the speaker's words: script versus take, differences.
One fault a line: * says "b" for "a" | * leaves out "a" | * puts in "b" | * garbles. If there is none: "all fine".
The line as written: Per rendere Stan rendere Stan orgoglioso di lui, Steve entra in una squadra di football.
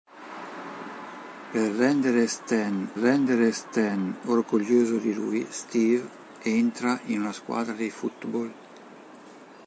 all fine